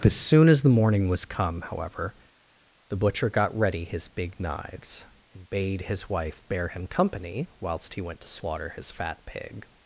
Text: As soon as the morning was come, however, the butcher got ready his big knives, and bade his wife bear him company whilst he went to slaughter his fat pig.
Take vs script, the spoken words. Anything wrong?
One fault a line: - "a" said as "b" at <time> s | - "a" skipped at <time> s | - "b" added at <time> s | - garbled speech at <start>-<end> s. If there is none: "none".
none